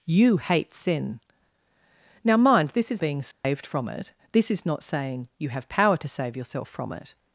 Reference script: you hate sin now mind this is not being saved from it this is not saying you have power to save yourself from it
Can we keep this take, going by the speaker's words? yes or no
no